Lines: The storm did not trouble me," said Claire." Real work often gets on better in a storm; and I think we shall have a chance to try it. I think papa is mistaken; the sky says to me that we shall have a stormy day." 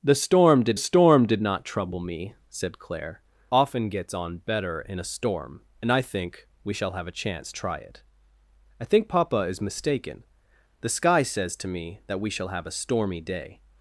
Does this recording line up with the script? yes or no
no